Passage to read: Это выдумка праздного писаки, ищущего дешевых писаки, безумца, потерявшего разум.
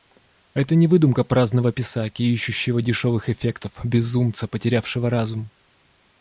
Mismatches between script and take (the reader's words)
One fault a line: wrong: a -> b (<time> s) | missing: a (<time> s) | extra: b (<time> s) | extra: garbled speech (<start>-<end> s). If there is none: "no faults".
extra: не (0.7 s)
wrong: писаки -> эффектов (3.3 s)